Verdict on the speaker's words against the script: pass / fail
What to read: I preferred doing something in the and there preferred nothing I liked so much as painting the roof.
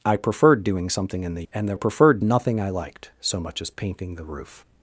pass